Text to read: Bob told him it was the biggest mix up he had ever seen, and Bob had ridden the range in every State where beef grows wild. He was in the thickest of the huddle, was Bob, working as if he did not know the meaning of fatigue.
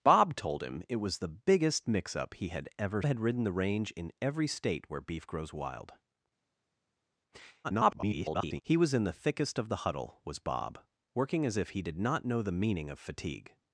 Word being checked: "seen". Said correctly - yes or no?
no